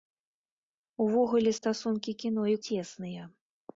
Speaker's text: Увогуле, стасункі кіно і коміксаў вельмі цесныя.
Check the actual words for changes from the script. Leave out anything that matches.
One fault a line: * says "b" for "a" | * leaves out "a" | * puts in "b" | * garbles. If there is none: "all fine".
* leaves out "коміксаў вельмі"